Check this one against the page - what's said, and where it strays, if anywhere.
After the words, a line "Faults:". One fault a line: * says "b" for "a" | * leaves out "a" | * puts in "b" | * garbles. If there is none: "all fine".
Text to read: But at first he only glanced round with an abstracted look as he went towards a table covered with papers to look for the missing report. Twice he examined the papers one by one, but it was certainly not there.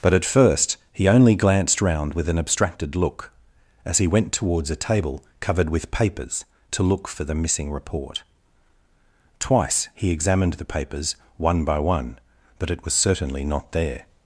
But at first he only glanced round with an abstracted look as he went towards a table covered with papers to look for the missing report. Twice he examined the papers one by one, but it was certainly not there.
Faults:
all fine